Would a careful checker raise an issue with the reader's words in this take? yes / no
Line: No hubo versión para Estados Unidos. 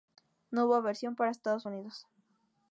no